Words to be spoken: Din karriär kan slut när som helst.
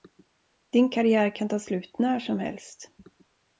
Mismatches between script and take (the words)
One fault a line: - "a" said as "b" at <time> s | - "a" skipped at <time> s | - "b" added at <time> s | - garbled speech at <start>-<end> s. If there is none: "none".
- "ta" added at 1.5 s